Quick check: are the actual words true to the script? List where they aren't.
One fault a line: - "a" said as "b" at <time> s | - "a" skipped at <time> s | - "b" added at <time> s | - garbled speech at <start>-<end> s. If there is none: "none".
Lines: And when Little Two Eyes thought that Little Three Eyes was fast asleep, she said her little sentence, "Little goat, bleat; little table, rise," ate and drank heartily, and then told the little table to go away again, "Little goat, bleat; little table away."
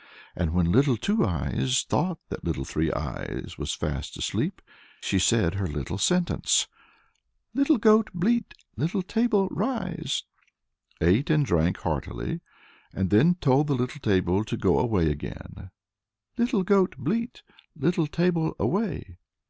none